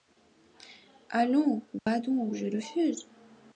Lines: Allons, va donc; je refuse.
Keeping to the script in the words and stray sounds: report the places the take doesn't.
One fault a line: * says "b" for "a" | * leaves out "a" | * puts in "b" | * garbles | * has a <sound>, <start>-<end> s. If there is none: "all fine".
* has a dropout, 1.8-1.9 s